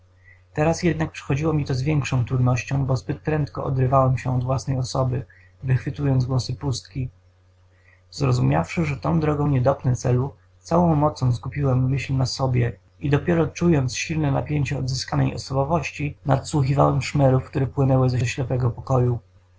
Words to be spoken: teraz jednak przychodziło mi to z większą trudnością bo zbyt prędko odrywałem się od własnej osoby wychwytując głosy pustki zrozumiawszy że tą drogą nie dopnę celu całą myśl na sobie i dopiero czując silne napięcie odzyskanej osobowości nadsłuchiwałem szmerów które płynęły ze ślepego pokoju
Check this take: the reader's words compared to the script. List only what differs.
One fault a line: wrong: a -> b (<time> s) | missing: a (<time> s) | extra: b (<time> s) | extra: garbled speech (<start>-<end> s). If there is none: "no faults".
extra: mocą skupiłem (11.0 s)